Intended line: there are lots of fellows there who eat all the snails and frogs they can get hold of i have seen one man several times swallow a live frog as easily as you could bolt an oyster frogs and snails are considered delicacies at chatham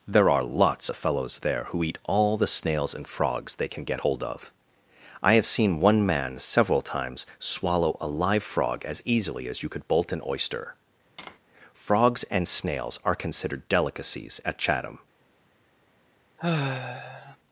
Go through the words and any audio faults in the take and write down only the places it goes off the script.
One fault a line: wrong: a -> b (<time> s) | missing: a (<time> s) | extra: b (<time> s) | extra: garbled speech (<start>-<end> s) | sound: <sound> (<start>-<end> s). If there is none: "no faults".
sound: tap (11.2-11.4 s)
sound: sigh (16.4-17.4 s)